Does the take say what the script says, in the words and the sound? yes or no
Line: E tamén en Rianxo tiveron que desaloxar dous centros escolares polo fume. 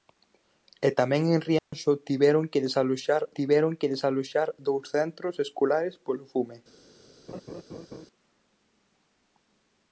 no